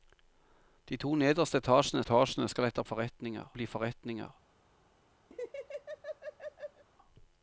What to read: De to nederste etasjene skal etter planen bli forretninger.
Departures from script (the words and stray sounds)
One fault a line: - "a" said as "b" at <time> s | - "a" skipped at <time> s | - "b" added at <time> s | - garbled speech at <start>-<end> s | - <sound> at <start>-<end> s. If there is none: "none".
- "etasjene" added at 2.0 s
- "planen" said as "forretninger" at 2.8 s
- laugh at 5.3-6.8 s